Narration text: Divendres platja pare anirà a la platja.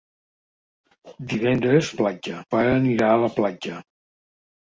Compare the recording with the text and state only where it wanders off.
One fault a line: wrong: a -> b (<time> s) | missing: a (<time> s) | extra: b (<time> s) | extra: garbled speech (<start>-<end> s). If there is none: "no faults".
no faults